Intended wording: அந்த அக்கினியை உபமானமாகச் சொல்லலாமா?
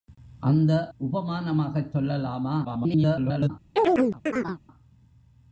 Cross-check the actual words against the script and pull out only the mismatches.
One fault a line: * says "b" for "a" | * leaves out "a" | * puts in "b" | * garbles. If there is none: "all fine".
* leaves out "அக்கினியை"
* garbles